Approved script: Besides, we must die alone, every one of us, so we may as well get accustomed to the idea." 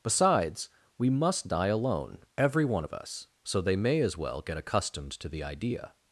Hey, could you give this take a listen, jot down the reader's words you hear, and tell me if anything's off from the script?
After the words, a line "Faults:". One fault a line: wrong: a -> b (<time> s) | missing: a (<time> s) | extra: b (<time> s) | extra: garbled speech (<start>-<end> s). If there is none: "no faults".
Besides, we must die alone, every one of us, so they may as well get accustomed to the idea."
Faults:
wrong: we -> they (3.6 s)